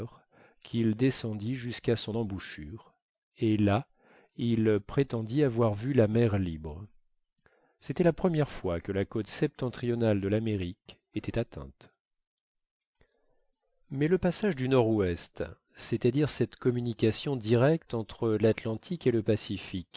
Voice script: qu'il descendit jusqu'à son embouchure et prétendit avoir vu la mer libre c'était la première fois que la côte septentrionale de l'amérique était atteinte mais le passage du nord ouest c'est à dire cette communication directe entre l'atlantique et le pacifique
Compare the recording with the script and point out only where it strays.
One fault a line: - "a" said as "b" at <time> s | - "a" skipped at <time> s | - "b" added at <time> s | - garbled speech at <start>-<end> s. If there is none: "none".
- "là il" added at 3.6 s